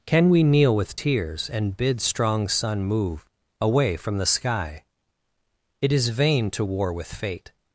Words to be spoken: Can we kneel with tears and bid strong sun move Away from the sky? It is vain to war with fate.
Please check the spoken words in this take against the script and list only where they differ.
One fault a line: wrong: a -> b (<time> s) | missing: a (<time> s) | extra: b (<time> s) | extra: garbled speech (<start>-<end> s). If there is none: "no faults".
no faults